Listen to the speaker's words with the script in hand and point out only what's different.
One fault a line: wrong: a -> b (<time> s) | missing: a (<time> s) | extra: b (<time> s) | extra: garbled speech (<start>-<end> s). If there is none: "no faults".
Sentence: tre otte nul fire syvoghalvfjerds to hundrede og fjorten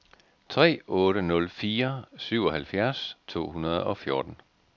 no faults